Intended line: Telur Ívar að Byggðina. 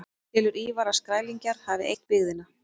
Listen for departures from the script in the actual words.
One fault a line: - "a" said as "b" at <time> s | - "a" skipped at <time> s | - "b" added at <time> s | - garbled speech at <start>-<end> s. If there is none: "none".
- "Skrælingjar hafi eytt" added at 1.0 s